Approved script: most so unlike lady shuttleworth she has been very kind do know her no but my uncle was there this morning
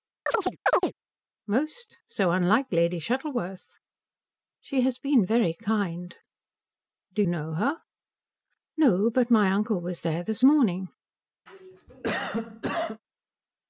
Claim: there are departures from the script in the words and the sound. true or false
true